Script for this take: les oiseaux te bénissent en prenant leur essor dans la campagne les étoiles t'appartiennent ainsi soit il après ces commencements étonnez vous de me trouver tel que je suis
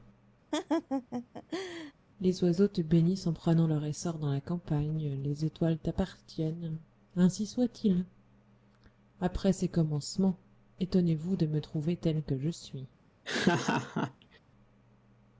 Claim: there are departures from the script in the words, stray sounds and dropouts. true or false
true